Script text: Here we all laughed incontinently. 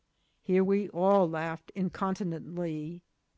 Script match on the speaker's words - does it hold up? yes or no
yes